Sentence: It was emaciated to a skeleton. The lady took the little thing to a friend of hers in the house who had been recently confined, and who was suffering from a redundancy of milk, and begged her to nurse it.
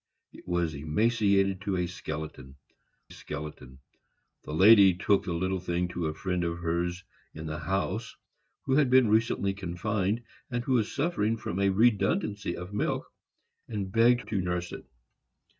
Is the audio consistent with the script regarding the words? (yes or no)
no